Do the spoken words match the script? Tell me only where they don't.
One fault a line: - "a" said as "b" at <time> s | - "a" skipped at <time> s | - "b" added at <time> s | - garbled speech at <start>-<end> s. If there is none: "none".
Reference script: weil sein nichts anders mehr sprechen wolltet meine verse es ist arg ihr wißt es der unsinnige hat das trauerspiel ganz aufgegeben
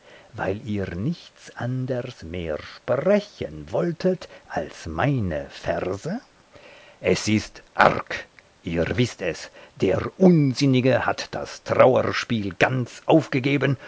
- "sein" said as "ihr" at 0.7 s
- "als" added at 4.5 s